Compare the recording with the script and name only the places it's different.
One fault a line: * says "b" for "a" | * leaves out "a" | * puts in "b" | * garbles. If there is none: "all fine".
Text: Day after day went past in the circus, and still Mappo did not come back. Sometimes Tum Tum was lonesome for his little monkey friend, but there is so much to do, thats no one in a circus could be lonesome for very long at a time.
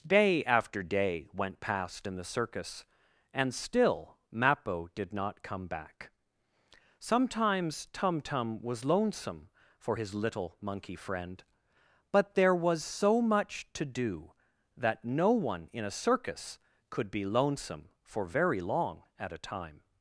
* says "was" for "is"
* says "that" for "thats"